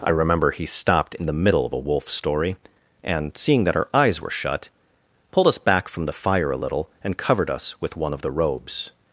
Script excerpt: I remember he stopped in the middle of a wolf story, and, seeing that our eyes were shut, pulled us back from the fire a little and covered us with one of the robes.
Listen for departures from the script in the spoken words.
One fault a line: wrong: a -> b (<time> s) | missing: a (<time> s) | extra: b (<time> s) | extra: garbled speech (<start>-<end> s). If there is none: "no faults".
no faults